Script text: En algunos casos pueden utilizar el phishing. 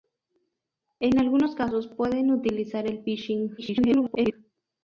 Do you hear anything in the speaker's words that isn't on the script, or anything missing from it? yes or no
yes